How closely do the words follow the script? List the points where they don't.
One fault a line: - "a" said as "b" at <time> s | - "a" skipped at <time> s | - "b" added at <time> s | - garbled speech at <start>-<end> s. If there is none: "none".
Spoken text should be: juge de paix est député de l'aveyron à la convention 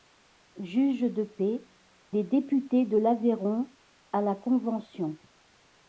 none